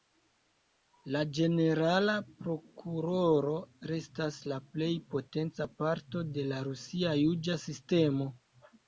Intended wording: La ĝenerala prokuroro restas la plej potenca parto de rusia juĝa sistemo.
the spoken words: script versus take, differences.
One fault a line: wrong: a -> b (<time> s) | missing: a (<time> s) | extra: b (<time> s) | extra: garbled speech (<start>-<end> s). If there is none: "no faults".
extra: la (6.5 s)